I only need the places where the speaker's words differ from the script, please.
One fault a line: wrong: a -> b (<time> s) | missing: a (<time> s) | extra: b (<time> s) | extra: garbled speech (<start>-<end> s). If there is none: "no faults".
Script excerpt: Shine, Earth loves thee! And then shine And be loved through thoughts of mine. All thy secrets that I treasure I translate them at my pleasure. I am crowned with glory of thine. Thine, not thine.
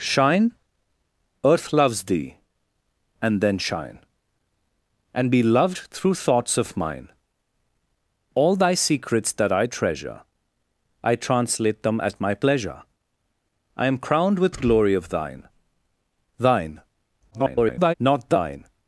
extra: garbled speech (17.3-17.9 s)